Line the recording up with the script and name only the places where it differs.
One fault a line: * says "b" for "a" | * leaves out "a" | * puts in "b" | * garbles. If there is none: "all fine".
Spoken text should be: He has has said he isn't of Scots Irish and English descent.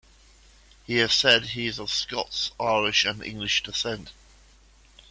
* leaves out "has"
* says "is" for "isn't"